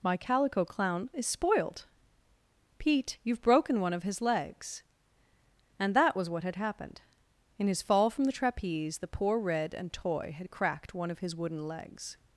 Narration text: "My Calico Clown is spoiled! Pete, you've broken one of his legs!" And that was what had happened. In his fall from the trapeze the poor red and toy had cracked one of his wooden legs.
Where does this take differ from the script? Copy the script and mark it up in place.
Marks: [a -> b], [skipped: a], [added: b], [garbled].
"My Calico Clown is spoiled! Pete, you've broken one of his legs!" And that was what had happened. In his fall from the trapeze the poor red and toy had cracked one of his wooden legs.